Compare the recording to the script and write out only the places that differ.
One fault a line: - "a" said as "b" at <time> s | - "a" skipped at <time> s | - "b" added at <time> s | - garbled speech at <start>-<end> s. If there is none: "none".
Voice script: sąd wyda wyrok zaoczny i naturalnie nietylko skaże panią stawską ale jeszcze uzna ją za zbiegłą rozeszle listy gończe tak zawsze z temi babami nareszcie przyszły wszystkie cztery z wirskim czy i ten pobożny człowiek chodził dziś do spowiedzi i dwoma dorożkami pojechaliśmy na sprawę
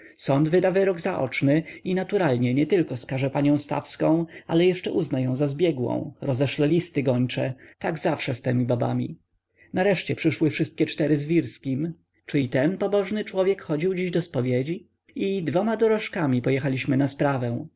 none